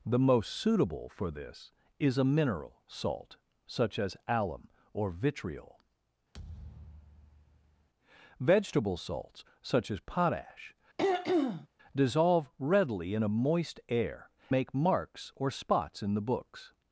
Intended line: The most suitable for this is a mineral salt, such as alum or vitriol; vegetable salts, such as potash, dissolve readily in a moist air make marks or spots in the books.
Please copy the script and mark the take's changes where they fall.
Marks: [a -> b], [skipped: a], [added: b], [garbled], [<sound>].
The most suitable for this is a mineral salt, such as alum or vitriol; [thud] vegetable salts, such as potash, [throat clearing] dissolve readily in a moist air make marks or spots in the books.